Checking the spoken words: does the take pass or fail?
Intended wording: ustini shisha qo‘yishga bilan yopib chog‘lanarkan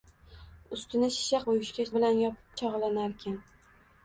pass